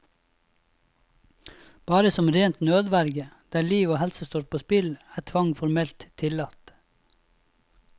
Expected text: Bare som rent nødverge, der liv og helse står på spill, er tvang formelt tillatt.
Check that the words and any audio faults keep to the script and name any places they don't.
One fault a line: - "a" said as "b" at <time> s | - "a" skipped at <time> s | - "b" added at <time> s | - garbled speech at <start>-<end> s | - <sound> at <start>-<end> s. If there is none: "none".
none